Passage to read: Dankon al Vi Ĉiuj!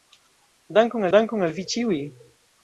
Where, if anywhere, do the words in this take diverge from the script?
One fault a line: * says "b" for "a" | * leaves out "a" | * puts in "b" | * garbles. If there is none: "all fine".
* puts in "dankon"